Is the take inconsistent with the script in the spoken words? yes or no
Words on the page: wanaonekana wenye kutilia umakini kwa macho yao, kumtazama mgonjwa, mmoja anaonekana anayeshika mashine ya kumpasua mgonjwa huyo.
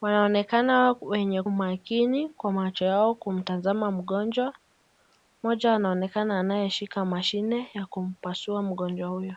yes